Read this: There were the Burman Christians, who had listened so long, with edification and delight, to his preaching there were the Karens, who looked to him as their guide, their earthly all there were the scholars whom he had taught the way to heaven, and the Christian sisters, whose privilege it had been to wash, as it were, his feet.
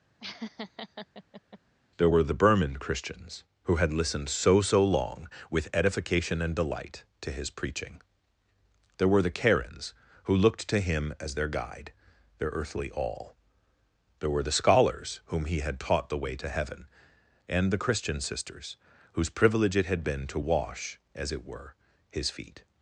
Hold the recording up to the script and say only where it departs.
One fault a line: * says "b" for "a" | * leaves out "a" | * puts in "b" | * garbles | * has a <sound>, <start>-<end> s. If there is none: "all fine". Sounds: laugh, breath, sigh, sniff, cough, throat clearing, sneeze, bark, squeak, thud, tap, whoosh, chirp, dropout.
* has a laugh, 0.2-1.6 s
* puts in "so"